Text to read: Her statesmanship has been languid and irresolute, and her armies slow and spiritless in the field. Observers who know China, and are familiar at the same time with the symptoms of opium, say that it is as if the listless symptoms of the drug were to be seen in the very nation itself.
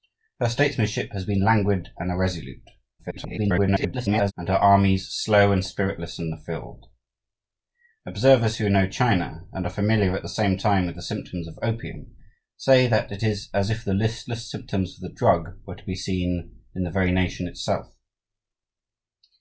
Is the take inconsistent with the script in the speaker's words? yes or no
yes